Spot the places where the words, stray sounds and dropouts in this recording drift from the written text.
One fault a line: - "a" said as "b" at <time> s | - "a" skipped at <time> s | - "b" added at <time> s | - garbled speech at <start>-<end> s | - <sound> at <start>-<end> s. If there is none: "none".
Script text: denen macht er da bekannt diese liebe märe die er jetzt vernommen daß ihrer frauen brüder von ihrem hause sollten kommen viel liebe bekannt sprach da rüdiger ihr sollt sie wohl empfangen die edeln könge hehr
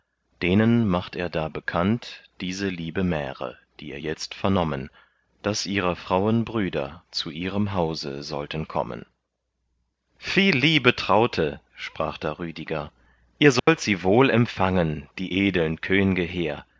- "von" said as "zu" at 7.1 s
- "bekannt" said as "traute" at 10.9 s
- dropout at 13.6-13.7 s